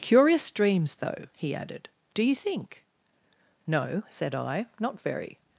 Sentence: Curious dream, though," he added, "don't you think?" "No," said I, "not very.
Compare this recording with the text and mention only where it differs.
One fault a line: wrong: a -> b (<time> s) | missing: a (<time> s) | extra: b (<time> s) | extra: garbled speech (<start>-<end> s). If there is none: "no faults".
wrong: dream -> dreams (0.5 s)
wrong: don't -> do (2.1 s)